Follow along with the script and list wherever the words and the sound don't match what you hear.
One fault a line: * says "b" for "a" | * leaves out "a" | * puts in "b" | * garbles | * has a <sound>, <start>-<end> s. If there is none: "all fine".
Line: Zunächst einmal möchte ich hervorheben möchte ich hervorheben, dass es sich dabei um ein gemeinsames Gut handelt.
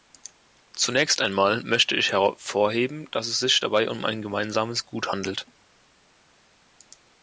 * leaves out "möchte ich hervorheben"